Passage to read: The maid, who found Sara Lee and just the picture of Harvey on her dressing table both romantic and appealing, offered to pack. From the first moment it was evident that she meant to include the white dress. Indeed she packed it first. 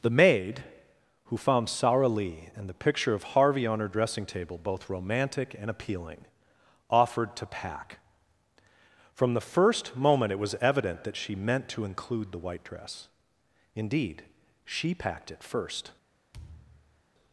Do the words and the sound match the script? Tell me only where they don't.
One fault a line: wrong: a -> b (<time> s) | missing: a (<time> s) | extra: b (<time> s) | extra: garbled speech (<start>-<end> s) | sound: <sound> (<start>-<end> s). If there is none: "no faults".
missing: just (2.7 s)
sound: thud (16.3-17.0 s)